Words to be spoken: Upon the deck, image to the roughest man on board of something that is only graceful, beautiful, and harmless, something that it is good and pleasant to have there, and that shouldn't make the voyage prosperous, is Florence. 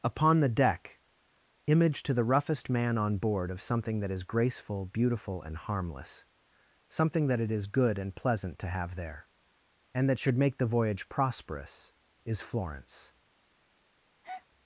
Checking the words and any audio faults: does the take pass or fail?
fail